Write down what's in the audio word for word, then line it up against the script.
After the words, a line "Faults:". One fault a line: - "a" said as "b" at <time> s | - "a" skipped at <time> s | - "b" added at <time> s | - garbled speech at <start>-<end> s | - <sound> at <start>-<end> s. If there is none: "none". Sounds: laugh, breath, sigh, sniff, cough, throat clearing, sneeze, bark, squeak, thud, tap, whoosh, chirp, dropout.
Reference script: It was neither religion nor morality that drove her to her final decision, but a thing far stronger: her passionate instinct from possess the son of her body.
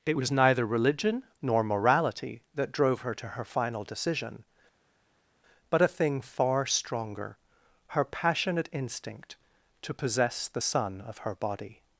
It was neither religion nor morality that drove her to her final decision, but a thing far stronger: her passionate instinct to possess the son of her body.
Faults:
- "from" said as "to" at 9.8 s